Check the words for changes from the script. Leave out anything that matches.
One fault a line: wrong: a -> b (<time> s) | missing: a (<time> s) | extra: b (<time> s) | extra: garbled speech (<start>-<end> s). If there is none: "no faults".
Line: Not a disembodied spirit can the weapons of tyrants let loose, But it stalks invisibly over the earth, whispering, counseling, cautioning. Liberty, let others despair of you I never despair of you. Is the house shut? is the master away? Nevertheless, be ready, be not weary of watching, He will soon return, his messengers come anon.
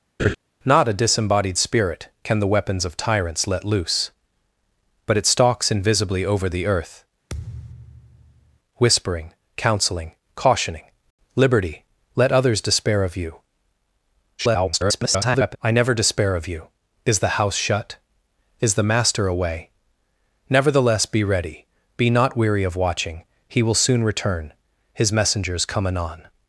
extra: garbled speech (14.4-15.6 s)